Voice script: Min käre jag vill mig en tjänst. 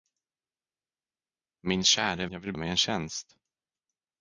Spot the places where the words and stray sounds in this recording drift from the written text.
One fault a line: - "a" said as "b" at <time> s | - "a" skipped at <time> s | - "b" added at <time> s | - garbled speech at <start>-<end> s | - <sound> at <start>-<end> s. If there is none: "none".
none